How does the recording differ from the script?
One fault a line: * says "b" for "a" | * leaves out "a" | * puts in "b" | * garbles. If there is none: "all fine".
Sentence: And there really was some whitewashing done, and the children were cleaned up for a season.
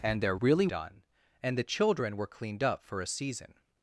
* leaves out "was some whitewashing"